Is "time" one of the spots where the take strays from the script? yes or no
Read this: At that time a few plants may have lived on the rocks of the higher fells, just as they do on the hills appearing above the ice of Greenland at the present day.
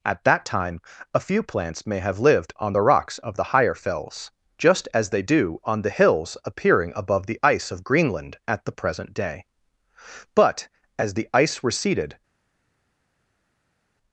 no